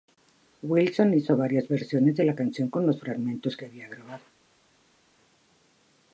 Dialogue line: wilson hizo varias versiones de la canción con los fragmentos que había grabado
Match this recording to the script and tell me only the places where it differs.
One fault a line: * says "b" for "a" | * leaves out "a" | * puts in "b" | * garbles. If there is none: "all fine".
all fine